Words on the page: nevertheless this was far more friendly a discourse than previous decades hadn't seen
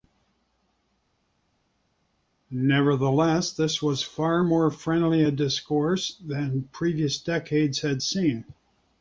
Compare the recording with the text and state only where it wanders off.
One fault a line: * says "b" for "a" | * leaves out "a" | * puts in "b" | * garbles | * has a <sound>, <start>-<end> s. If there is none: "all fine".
* says "had" for "hadn't"